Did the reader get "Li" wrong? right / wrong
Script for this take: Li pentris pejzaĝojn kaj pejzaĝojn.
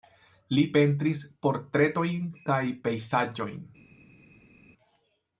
right